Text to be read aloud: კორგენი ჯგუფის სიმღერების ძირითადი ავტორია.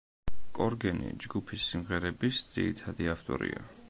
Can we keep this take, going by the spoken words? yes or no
yes